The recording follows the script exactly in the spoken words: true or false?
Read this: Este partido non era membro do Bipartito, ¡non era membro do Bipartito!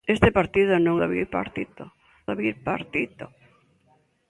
false